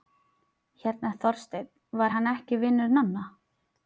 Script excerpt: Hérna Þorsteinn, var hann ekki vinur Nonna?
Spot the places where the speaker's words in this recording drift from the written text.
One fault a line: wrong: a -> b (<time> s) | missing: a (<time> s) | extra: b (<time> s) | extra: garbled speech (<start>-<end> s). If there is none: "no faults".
no faults